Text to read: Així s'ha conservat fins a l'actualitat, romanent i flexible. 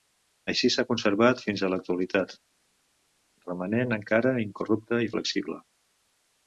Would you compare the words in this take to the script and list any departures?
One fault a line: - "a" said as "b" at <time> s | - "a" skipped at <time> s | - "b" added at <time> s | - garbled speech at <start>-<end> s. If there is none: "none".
- "encara incorrupte" added at 4.0 s